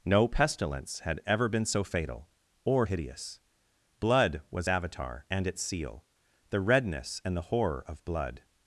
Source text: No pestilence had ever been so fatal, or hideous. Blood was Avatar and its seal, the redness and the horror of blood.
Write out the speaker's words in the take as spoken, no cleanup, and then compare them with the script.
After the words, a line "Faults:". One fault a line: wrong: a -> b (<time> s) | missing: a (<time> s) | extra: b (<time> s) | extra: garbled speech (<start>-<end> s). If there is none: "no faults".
No pestilence had ever been so fatal, or hideous. Blood was Avatar and its seal, the redness and the horror of blood.
Faults:
no faults